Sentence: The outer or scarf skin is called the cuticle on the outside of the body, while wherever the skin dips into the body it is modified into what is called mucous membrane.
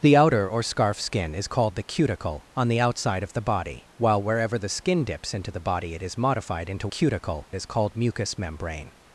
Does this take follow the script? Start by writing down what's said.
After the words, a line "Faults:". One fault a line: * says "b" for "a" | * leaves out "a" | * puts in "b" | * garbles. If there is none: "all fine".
The outer or scarf skin is called the cuticle on the outside of the body, while wherever the skin dips into the body it is modified into cuticle is called mucous membrane.
Faults:
* says "cuticle" for "what"